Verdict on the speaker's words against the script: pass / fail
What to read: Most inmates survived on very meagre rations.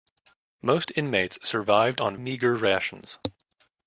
fail